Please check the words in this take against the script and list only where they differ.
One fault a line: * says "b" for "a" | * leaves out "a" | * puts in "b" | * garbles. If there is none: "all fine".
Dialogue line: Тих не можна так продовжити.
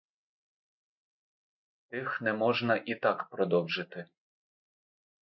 * puts in "і"